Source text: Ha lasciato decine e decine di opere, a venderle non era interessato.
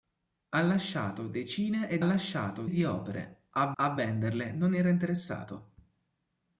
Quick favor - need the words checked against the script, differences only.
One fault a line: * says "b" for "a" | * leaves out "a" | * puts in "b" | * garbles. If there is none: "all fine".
* says "lasciato" for "decine"
* puts in "a"